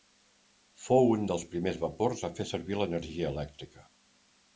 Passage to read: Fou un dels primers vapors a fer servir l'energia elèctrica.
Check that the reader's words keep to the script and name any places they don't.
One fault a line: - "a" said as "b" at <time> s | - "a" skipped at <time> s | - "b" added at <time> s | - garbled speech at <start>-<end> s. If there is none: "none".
none